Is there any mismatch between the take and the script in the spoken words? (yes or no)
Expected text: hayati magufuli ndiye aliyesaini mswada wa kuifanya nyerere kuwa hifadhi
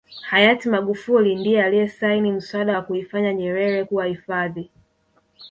no